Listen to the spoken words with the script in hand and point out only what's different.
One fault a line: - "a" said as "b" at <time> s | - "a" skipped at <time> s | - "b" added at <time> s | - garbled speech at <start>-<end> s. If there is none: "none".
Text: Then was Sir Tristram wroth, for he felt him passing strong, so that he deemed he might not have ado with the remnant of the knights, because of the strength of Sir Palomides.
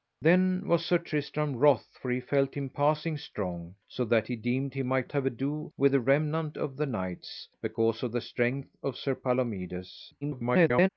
- "not" skipped at 5.1 s
- garbled speech at 10.2-10.9 s